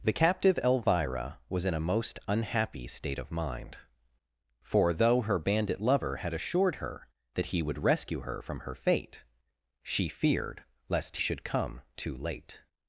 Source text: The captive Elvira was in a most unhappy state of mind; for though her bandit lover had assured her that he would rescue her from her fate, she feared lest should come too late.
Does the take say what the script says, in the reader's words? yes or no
yes